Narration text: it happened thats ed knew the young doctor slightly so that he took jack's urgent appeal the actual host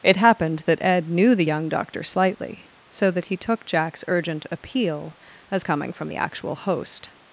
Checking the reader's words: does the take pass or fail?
fail